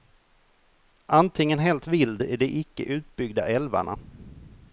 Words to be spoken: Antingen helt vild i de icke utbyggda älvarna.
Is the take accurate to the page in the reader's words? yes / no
yes